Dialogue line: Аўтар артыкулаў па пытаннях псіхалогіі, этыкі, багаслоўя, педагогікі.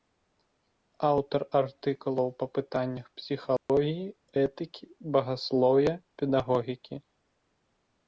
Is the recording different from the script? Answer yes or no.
no